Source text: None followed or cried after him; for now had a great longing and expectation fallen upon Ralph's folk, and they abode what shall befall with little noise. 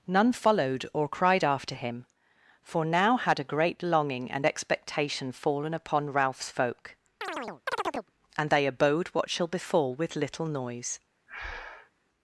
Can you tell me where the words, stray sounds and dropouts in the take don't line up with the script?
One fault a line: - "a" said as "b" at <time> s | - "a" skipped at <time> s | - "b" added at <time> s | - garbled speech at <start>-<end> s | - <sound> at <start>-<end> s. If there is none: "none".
- chirp at 7.2-8.1 s
- breath at 11.3-11.9 s